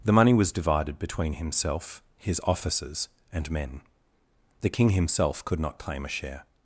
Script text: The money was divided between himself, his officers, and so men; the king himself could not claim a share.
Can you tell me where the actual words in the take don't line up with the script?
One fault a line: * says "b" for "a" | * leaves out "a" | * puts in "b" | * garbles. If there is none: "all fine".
* leaves out "so"